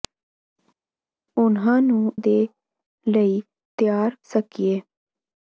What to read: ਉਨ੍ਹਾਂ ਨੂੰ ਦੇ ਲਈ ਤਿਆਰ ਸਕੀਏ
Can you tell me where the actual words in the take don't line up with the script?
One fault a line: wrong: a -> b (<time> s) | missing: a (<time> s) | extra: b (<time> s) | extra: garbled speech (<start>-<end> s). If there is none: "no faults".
no faults